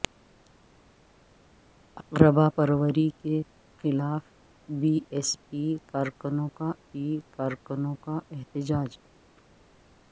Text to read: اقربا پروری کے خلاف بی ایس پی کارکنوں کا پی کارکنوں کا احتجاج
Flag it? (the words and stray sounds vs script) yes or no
no